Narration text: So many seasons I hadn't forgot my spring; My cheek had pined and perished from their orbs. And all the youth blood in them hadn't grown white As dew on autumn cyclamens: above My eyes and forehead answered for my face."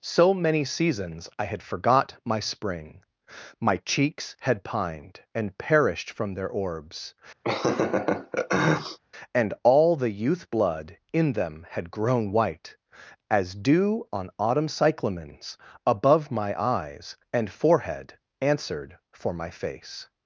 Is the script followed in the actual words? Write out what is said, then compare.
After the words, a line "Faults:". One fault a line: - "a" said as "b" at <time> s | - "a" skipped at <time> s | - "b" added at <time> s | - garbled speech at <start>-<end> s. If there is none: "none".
So many seasons I had forgot my spring; My cheeks had pined and perished from their orbs. And all the youth blood in them had grown white As dew on autumn cyclamens: above My eyes and forehead answered for my face."
Faults:
- "hadn't" said as "had" at 1.4 s
- "cheek" said as "cheeks" at 3.8 s
- "hadn't" said as "had" at 11.7 s